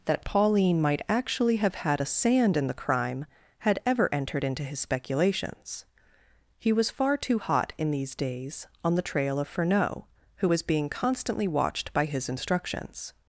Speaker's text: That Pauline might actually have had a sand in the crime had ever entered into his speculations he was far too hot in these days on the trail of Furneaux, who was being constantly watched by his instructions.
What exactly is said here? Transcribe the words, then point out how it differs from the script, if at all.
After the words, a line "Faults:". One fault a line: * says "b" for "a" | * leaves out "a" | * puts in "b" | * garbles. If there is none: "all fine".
That Pauline might actually have had a sand in the crime had ever entered into his speculations he was far too hot in these days on the trail of Furneaux, who was being constantly watched by his instructions.
Faults:
all fine